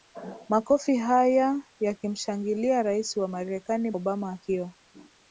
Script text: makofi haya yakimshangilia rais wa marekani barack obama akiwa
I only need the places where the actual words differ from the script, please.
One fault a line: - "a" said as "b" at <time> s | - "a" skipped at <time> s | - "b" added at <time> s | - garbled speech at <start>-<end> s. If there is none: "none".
- "barack" skipped at 3.9 s